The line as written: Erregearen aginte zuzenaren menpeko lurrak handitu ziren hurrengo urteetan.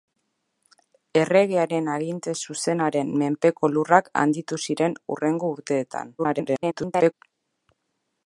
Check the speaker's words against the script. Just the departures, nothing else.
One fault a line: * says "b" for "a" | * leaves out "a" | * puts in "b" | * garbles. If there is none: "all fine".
* garbles